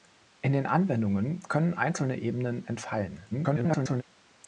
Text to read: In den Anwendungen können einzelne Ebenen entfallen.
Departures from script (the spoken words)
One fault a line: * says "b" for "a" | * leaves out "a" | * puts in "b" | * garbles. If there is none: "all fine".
* garbles